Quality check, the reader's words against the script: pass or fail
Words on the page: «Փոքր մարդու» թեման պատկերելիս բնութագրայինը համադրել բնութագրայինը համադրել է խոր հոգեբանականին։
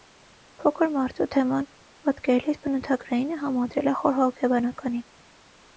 fail